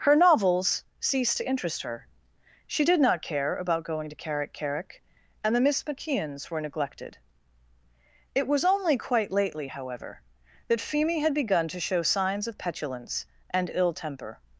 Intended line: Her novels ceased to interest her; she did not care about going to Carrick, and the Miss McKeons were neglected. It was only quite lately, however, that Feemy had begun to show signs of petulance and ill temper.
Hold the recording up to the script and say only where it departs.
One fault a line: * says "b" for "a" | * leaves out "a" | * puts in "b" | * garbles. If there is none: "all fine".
* puts in "Carrick"